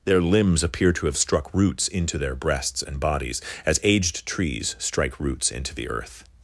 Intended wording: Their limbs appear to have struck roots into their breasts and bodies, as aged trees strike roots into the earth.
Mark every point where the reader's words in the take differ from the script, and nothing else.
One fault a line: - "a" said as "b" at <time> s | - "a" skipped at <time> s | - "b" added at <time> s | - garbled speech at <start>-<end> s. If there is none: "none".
none